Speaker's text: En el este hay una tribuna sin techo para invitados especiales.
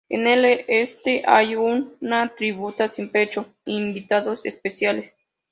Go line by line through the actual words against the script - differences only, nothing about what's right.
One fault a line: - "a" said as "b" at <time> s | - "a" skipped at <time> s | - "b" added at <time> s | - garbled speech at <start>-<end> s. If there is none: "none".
- "para" skipped at 3.5 s